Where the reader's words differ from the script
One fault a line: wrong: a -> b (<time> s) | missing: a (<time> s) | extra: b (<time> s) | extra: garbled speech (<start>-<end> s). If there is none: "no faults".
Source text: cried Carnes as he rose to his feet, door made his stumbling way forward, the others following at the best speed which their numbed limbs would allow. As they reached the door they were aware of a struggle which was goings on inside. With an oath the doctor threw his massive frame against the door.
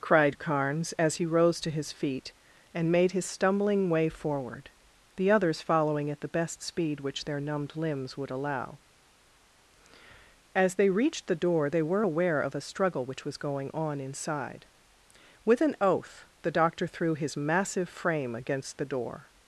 wrong: door -> and (2.7 s)
wrong: goings -> going (13.4 s)